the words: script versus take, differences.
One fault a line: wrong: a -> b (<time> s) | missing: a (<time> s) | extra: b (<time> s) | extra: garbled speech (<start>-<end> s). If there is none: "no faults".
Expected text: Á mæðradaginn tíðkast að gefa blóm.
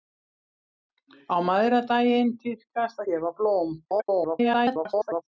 missing: að (3.0 s)
extra: garbled speech (3.8-5.2 s)